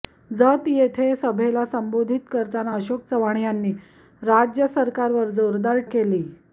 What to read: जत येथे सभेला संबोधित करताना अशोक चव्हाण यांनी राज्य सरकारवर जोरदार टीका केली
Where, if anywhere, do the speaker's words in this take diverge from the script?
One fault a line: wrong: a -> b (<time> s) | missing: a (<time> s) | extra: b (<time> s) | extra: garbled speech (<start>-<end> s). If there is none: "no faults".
missing: टीका (5.8 s)